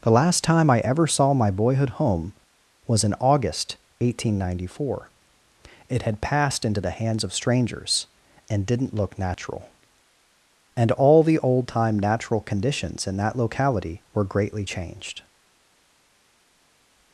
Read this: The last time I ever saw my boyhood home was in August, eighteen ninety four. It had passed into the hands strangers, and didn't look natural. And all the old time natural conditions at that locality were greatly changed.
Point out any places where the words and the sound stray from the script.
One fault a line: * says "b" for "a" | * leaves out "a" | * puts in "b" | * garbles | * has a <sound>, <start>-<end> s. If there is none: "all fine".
* puts in "of"
* says "in" for "at"